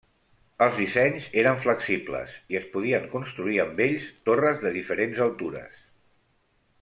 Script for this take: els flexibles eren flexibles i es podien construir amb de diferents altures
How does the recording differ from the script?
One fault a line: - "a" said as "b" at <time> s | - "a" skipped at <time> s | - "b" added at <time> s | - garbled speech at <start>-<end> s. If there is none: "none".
- "flexibles" said as "dissenys" at 0.8 s
- "ells torres" added at 3.9 s